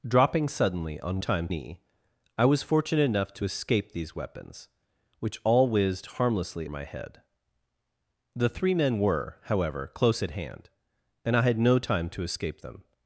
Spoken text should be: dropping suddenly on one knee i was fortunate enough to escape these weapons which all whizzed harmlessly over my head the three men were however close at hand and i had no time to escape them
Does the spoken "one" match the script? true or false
false